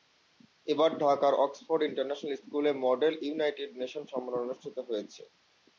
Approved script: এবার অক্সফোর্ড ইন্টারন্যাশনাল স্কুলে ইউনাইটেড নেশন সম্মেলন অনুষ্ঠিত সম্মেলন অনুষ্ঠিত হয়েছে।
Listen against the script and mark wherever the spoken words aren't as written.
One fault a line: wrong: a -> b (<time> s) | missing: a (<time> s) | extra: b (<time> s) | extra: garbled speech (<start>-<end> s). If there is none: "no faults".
extra: ঢাকার (1.0 s)
extra: মডেল (2.9 s)
missing: সম্মেলন অনুষ্ঠিত (4.8 s)